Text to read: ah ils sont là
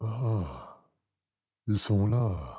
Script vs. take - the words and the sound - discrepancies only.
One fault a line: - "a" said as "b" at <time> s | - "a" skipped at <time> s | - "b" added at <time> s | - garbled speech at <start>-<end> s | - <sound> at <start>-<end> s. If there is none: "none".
none